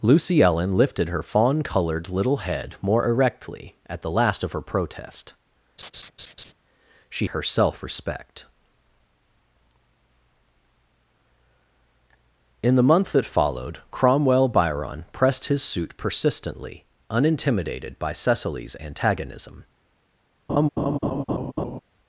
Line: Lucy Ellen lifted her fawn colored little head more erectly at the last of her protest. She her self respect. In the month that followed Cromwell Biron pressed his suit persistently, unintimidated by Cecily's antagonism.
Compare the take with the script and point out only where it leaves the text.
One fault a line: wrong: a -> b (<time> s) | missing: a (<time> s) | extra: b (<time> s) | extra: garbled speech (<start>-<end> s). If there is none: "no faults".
no faults